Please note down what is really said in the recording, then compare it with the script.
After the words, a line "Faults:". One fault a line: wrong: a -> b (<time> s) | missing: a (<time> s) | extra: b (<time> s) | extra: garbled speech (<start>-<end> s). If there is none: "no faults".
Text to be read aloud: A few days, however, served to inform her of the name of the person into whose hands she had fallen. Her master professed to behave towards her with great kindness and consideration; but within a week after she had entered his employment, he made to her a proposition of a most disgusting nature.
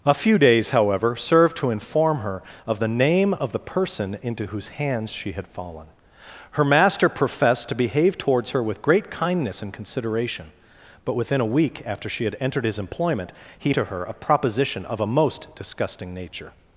A few days, however, served to inform her of the name of the person into whose hands she had fallen. Her master professed to behave towards her with great kindness and consideration; but within a week after she had entered his employment, he to her a proposition of a most disgusting nature.
Faults:
missing: made (13.8 s)